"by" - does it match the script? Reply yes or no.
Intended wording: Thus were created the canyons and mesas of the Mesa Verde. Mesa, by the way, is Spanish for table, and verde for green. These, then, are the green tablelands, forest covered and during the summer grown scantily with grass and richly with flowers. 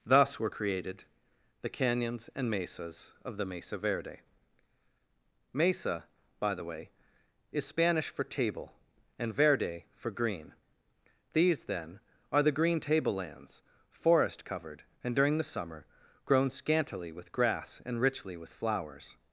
yes